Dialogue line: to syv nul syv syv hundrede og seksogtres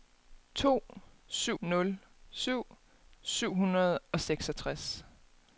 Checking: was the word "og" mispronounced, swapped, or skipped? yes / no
no